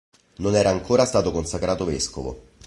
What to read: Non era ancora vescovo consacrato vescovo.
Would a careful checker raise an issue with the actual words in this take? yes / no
yes